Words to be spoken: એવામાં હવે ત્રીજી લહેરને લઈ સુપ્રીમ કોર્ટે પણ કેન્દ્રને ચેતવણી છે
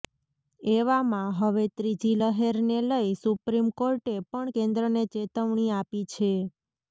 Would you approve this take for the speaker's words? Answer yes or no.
no